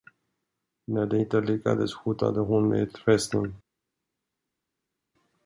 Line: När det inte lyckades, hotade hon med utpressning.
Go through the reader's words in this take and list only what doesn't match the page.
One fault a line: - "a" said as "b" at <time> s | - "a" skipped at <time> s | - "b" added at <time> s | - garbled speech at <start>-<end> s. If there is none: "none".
none